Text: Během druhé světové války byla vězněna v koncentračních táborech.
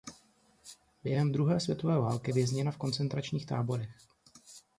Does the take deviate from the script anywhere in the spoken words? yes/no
yes